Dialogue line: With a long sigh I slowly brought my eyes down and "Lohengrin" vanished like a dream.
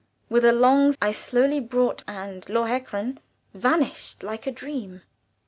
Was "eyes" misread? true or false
true